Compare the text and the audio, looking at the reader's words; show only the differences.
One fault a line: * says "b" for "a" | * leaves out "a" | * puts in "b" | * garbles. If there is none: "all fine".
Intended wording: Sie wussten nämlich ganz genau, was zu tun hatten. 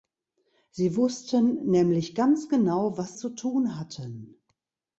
all fine